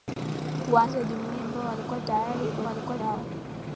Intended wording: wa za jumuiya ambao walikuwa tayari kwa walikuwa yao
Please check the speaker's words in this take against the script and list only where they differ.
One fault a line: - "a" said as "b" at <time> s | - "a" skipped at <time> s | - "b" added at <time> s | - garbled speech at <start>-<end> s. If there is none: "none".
none